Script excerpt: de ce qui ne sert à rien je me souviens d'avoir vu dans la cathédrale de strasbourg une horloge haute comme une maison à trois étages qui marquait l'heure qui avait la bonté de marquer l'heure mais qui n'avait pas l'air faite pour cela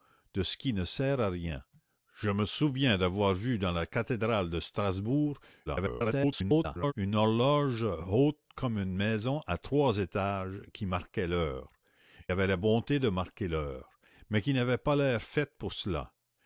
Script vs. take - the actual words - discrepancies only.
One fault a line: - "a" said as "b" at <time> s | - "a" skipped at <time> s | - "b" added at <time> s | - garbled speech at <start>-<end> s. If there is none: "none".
- garbled speech at 5.7-6.9 s
- "qui" skipped at 11.7 s